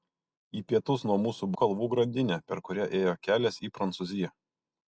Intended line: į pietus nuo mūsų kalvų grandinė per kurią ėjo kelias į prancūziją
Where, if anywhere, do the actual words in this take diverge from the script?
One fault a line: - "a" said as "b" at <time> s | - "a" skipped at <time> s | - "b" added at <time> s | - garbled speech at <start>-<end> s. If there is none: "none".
none